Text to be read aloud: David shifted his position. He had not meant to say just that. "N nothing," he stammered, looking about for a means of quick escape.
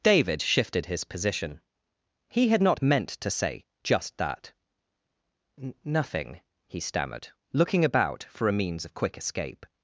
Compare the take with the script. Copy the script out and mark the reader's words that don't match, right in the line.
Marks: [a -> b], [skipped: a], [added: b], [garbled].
David shifted his position. He had not meant to say just that. "N nothing," he stammered, looking about for a means of quick escape.